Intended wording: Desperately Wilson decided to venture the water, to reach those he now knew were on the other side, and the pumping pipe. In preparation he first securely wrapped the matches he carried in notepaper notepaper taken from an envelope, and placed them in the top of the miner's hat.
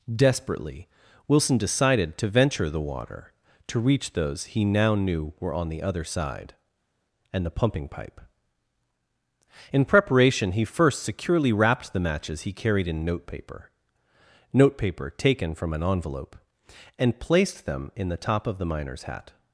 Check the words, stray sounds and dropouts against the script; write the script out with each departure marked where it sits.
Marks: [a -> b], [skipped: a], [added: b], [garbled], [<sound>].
Desperately Wilson decided to venture the water, to reach those he now knew were on the other side, and the pumping pipe. In preparation he first securely wrapped the matches he carried in notepaper notepaper taken from an envelope, and placed them in the top of the miner's hat.